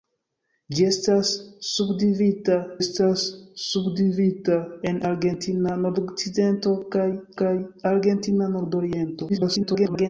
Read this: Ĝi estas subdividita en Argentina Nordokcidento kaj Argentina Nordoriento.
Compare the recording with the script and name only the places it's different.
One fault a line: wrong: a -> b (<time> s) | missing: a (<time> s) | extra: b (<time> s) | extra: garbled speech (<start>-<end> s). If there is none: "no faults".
extra: estas subdividita (2.8 s)
extra: kaj (7.4 s)
extra: garbled speech (9.3-10.1 s)